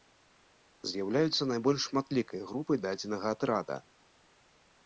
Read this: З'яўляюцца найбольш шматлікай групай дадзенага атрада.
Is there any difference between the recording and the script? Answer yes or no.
no